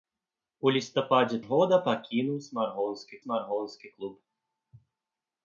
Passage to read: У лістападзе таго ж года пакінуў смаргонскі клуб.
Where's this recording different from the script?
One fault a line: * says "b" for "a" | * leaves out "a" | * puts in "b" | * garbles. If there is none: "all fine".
* leaves out "таго"
* puts in "смаргонскі"